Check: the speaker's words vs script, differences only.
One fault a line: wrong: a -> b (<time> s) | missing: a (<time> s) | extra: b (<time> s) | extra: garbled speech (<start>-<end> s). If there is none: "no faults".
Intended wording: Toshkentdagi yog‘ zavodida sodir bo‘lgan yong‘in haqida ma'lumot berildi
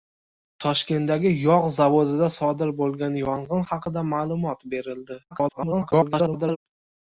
extra: garbled speech (5.3-6.6 s)